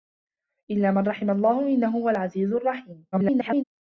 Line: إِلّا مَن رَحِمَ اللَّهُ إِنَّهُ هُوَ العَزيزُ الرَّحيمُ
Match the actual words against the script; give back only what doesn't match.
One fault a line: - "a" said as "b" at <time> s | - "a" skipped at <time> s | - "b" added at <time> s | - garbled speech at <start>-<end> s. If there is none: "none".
- garbled speech at 3.1-3.6 s